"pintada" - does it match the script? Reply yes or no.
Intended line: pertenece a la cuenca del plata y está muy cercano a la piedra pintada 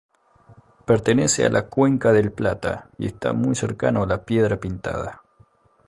yes